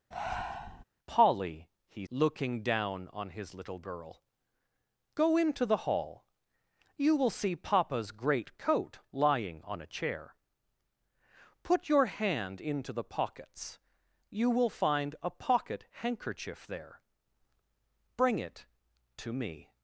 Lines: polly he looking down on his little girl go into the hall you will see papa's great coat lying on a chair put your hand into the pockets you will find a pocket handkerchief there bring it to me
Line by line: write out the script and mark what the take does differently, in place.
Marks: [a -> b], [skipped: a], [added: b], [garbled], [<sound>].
[breath] polly he looking down on his little girl go into the hall you will see papa's great coat lying on a chair put your hand into the pockets you will find a pocket handkerchief there bring it to me